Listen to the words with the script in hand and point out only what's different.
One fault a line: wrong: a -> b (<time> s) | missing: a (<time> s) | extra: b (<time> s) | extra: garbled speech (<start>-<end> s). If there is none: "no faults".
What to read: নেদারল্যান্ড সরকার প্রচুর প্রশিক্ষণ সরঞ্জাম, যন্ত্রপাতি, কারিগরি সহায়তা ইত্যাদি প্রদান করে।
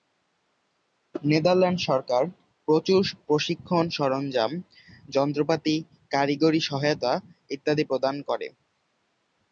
no faults